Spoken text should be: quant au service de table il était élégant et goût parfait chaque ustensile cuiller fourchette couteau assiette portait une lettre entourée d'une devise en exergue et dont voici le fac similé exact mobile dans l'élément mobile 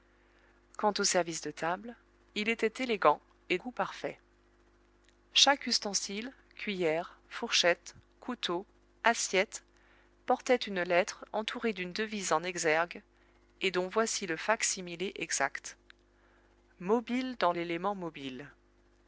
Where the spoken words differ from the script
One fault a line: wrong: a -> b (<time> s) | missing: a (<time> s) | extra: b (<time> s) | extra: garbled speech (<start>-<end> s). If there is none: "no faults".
no faults